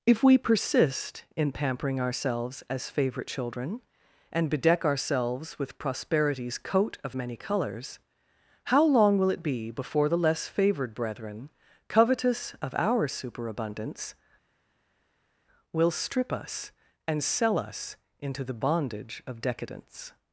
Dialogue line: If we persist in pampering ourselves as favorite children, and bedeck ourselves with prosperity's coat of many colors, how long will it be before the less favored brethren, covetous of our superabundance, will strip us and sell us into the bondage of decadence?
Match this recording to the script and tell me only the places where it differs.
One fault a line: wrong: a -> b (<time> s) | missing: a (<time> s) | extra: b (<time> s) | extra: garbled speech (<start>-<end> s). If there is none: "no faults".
no faults